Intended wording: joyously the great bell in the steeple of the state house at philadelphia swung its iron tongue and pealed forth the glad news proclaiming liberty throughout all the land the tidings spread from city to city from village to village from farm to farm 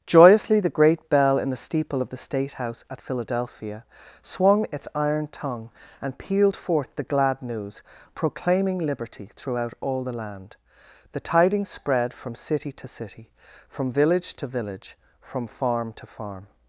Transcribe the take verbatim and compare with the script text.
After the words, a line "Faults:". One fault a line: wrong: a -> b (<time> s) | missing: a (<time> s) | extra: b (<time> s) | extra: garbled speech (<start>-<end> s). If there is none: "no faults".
joyously the great bell in the steeple of the state house at philadelphia swung its iron tongue and pealed forth the glad news proclaiming liberty throughout all the land the tidings spread from city to city from village to village from farm to farm
Faults:
no faults